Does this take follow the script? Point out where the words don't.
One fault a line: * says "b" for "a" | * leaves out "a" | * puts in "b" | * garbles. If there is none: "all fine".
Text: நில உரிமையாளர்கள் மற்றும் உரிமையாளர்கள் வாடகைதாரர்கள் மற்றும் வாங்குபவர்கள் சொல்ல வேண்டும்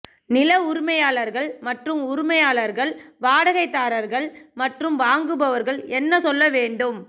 * puts in "என்ன"